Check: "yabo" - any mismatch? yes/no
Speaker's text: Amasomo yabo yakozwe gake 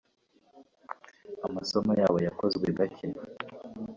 no